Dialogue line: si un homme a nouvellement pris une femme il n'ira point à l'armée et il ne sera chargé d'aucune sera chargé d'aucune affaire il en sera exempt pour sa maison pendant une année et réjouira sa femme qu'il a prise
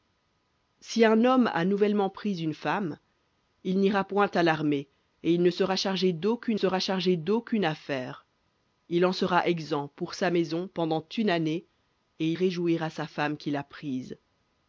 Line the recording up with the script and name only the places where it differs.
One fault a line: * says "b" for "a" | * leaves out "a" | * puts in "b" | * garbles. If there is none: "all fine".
all fine